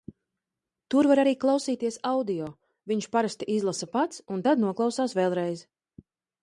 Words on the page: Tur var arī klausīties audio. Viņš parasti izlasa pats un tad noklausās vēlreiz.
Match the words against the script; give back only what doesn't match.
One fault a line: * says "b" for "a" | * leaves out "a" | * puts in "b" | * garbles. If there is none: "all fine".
all fine